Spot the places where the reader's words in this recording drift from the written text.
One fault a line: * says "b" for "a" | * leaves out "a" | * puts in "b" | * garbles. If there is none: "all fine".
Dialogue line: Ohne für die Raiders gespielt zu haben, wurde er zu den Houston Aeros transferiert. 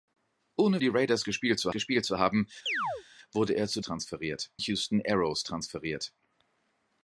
* leaves out "für"
* puts in "gespielt zu"
* says "transferiert" for "den"